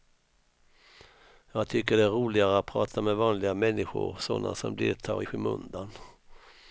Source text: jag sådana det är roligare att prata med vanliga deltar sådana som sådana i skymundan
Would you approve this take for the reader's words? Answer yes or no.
no